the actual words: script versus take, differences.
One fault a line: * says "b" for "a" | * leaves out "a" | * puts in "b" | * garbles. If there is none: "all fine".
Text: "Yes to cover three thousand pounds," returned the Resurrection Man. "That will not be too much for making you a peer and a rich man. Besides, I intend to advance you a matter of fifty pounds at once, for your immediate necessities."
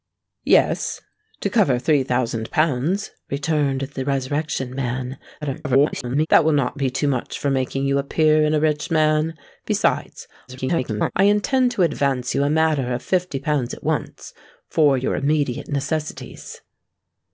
* garbles
* garbles